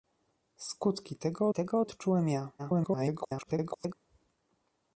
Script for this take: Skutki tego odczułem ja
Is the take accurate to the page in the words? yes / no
no